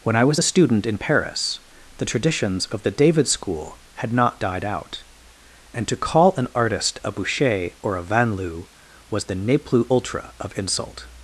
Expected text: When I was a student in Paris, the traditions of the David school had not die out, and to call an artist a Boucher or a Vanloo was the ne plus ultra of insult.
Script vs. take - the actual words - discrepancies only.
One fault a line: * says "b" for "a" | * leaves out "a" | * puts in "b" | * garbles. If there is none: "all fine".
* says "died" for "die"